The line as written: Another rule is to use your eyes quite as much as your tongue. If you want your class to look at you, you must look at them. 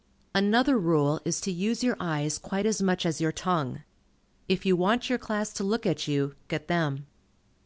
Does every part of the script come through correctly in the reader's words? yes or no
no